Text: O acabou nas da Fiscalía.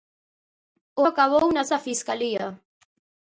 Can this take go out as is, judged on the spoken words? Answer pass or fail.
pass